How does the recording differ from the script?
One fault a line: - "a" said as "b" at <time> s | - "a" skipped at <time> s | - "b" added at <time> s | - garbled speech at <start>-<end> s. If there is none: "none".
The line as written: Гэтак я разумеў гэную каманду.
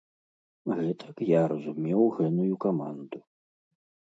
none